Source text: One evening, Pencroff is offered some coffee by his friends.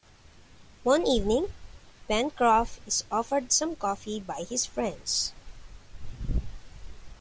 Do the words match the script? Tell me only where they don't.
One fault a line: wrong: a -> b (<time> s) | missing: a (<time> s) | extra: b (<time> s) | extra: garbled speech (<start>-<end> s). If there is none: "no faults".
no faults